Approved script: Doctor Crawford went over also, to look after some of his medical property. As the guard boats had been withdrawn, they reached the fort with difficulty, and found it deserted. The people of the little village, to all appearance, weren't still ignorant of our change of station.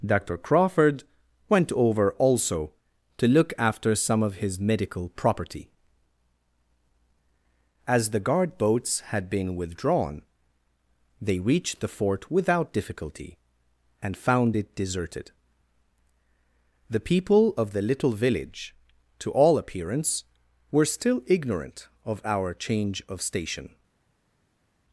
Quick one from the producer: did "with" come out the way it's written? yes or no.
no